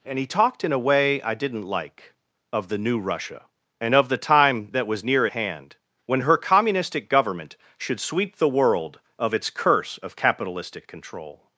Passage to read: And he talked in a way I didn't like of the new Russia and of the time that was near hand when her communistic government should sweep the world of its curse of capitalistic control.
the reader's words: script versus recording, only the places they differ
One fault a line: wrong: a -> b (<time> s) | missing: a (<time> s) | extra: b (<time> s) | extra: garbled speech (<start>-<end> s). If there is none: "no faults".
no faults